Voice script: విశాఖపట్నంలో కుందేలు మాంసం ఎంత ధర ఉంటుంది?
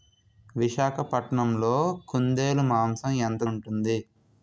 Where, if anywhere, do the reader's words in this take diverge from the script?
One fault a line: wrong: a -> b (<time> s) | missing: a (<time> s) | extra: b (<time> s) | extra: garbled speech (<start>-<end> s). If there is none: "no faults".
missing: ధర (3.4 s)